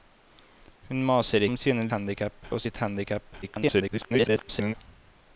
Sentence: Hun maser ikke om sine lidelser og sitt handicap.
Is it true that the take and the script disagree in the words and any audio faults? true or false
true